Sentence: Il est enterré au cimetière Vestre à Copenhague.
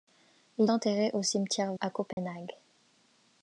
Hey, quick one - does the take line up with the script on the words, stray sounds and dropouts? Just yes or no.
no